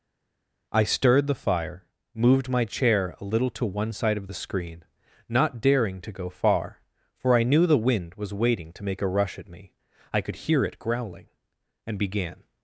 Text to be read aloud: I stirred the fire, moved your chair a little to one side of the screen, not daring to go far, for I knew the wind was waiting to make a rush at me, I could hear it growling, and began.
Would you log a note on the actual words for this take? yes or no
yes